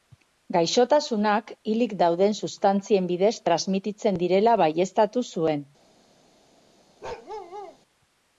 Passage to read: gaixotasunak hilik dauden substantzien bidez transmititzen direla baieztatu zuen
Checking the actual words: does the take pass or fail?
pass